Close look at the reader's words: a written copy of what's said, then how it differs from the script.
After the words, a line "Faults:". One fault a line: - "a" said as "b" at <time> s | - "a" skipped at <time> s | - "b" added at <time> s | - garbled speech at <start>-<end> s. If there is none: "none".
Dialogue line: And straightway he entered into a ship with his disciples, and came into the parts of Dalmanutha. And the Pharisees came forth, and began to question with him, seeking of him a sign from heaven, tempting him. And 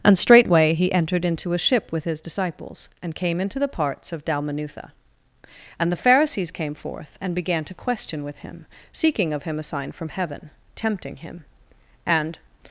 And straightway he entered into a ship with his disciples, and came into the parts of Dalmanutha. And the Pharisees came forth, and began to question with him, seeking of him a sign from heaven, tempting him. And
Faults:
none